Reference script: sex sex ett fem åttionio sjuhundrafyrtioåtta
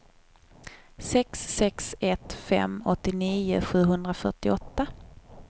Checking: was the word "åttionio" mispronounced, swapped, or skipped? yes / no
no